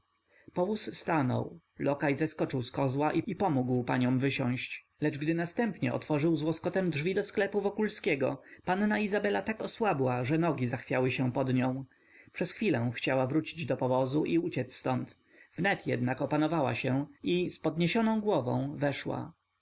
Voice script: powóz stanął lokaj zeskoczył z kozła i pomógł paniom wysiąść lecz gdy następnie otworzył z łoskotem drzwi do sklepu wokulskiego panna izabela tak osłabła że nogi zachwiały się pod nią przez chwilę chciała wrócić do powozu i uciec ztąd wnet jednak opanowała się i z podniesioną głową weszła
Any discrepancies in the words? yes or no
no